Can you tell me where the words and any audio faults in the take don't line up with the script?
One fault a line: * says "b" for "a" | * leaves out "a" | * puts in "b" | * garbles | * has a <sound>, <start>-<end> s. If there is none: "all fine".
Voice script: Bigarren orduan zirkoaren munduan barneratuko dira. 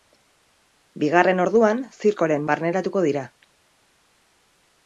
* leaves out "munduan"